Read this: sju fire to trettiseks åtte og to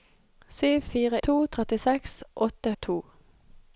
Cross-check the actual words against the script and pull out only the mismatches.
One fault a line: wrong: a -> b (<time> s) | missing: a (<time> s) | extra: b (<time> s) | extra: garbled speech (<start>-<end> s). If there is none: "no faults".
no faults